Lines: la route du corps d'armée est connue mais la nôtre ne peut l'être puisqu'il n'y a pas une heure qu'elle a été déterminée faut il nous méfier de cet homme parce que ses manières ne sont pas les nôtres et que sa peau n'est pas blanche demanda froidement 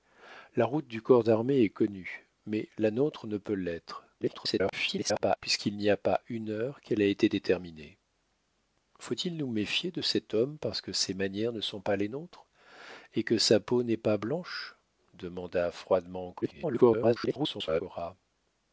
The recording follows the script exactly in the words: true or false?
false